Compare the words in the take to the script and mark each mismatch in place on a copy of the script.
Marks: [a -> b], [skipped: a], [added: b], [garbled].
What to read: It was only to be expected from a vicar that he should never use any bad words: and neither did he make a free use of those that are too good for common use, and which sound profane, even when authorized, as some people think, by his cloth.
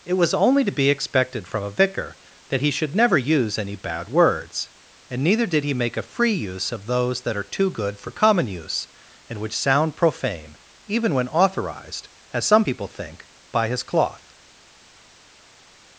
It was only to be expected from a vicar that he should never use any bad words: and neither did he make a free use of those that are too good for common use, and which sound profane, even when authorized, as some people think, by his cloth.